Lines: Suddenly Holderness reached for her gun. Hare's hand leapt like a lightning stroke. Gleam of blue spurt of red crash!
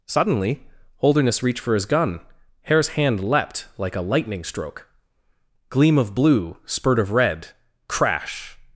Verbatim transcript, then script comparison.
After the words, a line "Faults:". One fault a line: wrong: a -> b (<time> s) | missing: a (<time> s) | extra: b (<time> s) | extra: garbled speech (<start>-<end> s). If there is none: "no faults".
Suddenly Holderness reached for his gun. Hare's hand leapt like a lightning stroke. Gleam of blue spurt of red crash!
Faults:
wrong: her -> his (1.7 s)